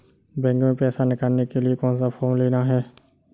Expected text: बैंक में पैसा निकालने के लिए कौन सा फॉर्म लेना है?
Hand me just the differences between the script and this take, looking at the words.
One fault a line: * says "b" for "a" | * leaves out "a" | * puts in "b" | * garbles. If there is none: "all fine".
all fine